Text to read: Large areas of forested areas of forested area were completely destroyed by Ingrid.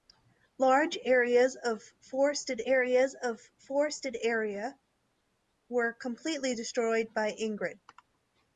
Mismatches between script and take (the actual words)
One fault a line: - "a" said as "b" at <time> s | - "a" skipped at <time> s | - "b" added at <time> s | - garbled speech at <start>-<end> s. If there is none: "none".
none